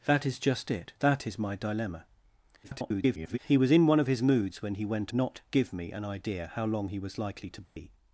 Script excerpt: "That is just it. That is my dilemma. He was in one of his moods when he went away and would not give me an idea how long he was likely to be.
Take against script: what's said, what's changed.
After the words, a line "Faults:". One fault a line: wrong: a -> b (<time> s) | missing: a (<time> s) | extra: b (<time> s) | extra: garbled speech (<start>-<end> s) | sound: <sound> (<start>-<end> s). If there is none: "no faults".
"That is just it. That is my dilemma. [garbled] He was in one of his moods when he went not give me an idea how long he was likely to be.
Faults:
extra: garbled speech (2.6-3.4 s)
missing: away and would (5.1 s)
sound: dropout (7.7-7.8 s)